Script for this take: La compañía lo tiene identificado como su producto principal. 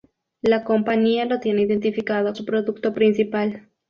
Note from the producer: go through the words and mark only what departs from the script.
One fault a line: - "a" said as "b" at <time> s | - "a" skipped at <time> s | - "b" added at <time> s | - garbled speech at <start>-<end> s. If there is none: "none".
- "como" skipped at 2.4 s